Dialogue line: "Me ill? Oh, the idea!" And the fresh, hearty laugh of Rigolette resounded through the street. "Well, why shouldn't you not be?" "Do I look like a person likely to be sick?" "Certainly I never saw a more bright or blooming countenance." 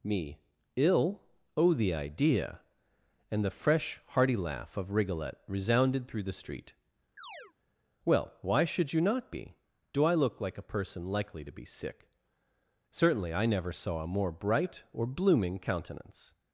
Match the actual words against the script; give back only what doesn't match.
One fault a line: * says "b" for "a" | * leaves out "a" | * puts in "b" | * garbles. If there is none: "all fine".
* says "should" for "shouldn't"